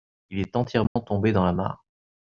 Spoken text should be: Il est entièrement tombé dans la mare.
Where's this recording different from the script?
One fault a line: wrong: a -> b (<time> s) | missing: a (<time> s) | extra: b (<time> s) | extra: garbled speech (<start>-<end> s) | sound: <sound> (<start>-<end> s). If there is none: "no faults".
sound: dropout (0.9-1.0 s)